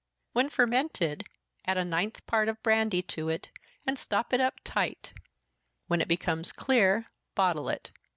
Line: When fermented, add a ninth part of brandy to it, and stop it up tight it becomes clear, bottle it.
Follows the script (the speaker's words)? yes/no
no